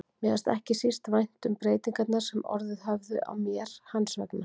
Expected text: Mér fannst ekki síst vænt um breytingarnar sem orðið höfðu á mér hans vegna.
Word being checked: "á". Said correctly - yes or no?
yes